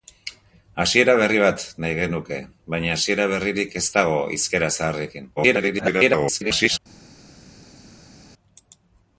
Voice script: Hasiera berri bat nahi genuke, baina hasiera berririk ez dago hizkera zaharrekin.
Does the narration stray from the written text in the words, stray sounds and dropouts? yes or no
yes